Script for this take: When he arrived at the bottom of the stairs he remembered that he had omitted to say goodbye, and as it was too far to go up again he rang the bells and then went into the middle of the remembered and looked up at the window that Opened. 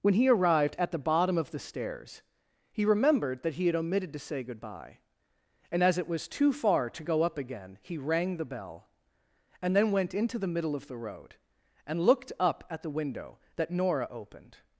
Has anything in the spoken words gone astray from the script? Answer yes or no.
yes